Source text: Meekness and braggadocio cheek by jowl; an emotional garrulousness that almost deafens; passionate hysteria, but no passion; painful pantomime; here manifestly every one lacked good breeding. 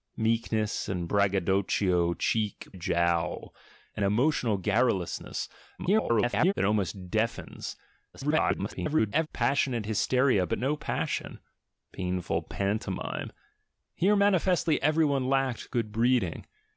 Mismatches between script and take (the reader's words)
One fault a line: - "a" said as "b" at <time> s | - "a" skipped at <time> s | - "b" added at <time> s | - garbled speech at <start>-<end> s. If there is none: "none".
- "by" skipped at 2.7 s
- garbled speech at 5.8-6.5 s
- garbled speech at 8.1-9.3 s